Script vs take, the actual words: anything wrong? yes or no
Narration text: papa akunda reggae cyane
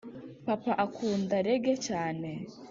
no